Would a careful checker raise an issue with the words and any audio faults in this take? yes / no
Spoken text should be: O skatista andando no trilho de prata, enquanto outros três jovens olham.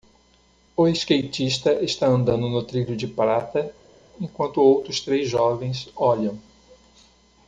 yes